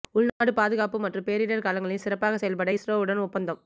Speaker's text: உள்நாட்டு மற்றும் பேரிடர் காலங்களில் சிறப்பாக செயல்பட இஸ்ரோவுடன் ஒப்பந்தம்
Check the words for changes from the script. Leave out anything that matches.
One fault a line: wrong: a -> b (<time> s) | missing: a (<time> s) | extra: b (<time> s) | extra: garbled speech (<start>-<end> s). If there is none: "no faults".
extra: பாதுகாப்பு (0.6 s)